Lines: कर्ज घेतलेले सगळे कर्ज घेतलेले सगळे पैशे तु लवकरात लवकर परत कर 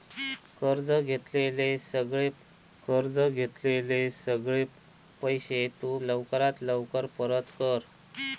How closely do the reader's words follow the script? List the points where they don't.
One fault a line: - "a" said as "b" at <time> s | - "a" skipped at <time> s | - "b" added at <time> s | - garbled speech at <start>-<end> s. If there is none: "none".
none